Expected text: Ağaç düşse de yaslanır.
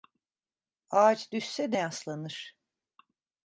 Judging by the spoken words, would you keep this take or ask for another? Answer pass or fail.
pass